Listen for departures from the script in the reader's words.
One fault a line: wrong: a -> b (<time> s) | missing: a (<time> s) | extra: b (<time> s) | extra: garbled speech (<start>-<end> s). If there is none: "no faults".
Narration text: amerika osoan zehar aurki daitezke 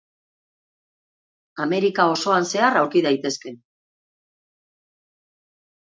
no faults